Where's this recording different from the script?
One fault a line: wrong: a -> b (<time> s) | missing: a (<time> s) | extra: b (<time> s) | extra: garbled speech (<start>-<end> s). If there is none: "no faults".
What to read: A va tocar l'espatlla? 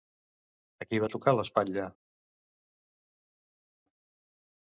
extra: qui (0.9 s)